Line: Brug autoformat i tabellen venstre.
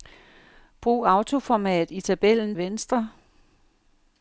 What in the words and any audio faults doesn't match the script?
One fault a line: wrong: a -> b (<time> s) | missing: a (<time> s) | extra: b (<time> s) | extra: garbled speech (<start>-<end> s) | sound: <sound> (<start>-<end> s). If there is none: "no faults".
no faults